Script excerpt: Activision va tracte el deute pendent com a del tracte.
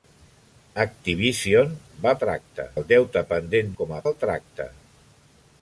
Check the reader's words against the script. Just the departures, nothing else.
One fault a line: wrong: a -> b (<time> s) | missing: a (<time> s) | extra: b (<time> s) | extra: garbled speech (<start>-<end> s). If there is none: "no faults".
no faults